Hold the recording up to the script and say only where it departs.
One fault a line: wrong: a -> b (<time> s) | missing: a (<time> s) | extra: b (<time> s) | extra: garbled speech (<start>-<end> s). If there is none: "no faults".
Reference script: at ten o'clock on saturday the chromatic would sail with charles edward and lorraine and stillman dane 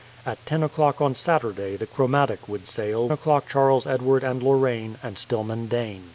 wrong: with -> o'clock (3.1 s)